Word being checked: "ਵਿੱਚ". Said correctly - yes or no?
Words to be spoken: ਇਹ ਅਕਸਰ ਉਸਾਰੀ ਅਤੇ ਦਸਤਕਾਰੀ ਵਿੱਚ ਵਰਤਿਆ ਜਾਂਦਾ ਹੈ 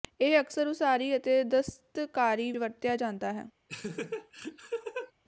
no